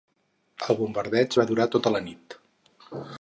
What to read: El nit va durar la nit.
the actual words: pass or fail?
fail